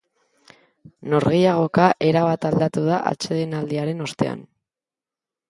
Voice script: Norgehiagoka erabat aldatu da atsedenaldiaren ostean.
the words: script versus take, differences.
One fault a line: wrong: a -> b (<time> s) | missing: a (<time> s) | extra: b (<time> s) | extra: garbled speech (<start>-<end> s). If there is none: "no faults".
no faults